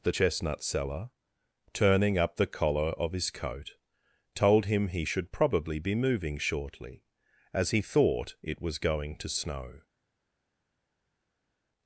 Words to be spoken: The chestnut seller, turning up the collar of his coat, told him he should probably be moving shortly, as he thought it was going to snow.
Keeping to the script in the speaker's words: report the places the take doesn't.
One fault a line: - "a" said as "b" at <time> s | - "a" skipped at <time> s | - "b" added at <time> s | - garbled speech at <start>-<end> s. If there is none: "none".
none